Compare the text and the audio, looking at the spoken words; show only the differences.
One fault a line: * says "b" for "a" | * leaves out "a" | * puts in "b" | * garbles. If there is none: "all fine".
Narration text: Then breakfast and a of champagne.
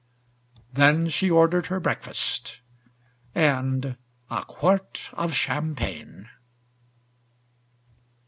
* puts in "she ordered her"
* puts in "quart"